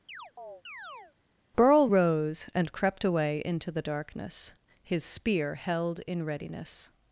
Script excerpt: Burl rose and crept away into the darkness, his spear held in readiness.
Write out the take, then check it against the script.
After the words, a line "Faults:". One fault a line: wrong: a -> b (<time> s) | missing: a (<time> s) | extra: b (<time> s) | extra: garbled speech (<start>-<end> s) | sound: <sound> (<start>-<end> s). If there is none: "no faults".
Burl rose and crept away into the darkness, his spear held in readiness.
Faults:
sound: chirp (0.1-1.1 s)